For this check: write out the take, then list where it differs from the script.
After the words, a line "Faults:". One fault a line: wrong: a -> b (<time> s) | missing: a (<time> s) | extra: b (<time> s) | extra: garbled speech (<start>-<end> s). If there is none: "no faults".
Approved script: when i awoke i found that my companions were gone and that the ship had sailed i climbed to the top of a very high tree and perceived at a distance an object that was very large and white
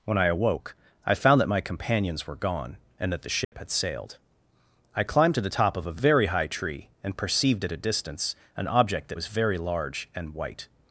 when i awoke i found that my companions were gone and that the ship had sailed i climbed to the top of a very high tree and perceived at a distance an object that was very large and white
Faults:
no faults